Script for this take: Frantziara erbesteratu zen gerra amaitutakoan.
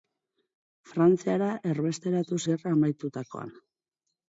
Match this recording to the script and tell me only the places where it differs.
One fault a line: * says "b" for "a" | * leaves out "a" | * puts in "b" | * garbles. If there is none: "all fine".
* leaves out "zen"